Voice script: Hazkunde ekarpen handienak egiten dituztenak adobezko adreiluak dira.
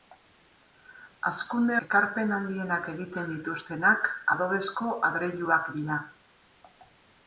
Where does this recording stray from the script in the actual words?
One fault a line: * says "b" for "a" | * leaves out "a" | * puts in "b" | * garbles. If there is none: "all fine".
all fine